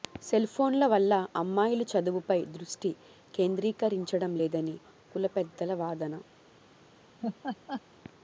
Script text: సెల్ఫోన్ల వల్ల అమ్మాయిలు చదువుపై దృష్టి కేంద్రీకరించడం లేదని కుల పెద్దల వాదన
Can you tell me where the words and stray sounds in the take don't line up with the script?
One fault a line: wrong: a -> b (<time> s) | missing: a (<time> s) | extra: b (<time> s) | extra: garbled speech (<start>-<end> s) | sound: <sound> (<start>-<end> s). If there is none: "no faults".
sound: laugh (7.2-7.8 s)